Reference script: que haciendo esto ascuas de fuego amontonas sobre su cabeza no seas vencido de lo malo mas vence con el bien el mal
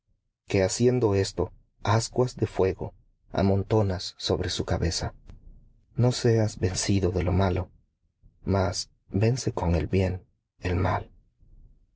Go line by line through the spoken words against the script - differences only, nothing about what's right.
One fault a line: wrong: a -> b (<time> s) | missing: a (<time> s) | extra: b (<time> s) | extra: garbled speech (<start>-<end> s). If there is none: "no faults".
no faults